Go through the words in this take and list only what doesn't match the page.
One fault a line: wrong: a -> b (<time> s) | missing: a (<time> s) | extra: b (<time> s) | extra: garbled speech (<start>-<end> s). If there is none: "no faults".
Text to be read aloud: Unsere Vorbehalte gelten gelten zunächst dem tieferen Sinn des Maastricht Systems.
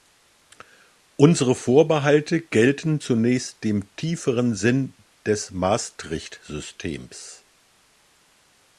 missing: gelten (3.0 s)